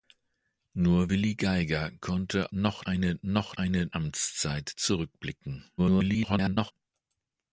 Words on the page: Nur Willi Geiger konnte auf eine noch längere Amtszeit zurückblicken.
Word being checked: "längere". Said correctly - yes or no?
no